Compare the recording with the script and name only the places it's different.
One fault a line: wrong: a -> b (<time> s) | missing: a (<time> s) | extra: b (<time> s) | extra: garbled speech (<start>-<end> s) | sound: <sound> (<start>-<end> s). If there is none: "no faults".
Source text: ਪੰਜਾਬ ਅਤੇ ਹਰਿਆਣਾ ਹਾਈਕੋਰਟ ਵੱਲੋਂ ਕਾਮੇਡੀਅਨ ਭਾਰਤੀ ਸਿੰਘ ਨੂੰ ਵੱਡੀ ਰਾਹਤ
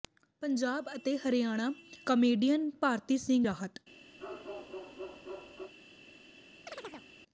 missing: ਹਾਈਕੋਰਟ ਵੱਲੋਂ (1.7 s)
missing: ਨੂੰ ਵੱਡੀ (3.5 s)
sound: bark (4.2-5.7 s)
sound: chirp (6.7-7.1 s)